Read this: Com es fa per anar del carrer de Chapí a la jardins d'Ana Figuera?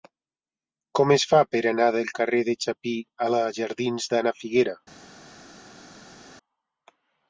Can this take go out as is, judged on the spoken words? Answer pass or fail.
pass